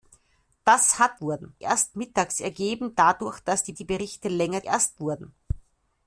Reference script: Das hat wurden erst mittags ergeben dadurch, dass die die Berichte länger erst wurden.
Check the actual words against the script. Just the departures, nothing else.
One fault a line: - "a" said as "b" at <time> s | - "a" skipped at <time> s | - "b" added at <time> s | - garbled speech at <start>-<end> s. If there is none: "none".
none